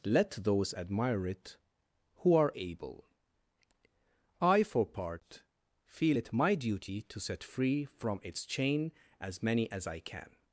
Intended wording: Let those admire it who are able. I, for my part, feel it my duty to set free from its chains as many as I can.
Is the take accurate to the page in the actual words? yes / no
no